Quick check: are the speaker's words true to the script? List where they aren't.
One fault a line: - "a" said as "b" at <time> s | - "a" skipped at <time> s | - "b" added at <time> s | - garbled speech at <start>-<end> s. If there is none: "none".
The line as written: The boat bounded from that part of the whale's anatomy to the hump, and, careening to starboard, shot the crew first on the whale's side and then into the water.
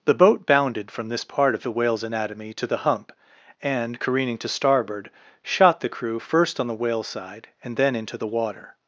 - "that" said as "this" at 1.1 s